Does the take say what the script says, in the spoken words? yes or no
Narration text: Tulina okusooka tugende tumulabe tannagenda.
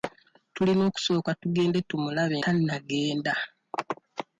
yes